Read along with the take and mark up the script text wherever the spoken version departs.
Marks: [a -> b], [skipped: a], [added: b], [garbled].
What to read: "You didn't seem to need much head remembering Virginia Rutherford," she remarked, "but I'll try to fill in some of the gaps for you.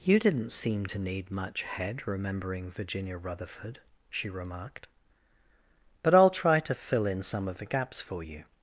"You didn't seem to need much head remembering Virginia Rutherford," she remarked, "but I'll try to fill in some of the gaps for you.